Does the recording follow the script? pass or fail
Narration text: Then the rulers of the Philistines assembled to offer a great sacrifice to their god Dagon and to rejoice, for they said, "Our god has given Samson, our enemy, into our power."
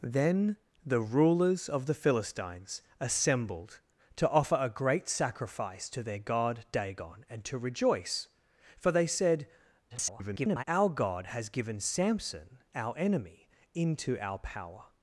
fail